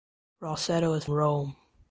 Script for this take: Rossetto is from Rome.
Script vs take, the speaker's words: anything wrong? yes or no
yes